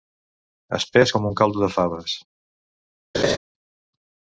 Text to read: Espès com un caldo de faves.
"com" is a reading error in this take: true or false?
false